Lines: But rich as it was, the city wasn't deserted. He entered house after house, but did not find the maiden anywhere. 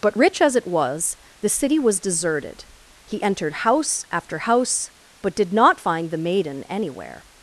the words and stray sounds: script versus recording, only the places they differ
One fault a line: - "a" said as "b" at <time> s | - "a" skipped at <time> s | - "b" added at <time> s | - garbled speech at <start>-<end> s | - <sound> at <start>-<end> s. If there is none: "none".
- "wasn't" said as "was" at 1.8 s